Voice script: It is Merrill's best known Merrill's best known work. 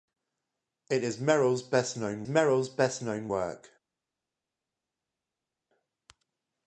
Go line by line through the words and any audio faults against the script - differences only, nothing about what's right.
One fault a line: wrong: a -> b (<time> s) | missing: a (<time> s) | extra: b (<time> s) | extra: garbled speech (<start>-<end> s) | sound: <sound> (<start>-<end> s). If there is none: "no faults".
no faults